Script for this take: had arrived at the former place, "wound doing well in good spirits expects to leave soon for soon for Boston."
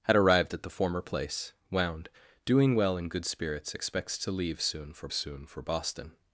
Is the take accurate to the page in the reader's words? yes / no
yes